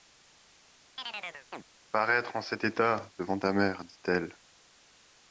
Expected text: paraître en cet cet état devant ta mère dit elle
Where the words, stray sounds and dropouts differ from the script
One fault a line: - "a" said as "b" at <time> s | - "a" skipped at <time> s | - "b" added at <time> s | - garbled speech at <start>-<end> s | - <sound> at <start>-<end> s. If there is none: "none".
- chirp at 1.0-1.6 s
- "cet" skipped at 2.6 s